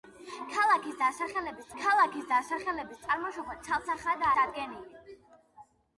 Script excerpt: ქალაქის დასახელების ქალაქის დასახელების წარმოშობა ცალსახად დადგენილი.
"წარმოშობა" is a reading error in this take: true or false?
false